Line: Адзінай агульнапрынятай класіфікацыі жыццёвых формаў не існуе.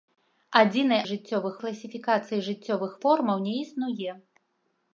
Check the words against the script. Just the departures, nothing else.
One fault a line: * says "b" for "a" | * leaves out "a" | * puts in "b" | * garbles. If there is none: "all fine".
* says "жыццёвых" for "агульнапрынятай"